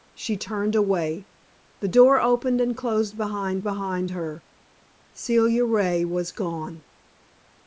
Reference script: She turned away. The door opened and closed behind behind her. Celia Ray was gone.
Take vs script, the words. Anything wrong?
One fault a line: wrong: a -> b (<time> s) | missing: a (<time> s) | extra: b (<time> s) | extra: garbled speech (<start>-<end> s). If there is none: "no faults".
no faults